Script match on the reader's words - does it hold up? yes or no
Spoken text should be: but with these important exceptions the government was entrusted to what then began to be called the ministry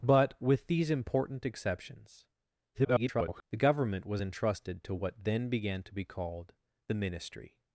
no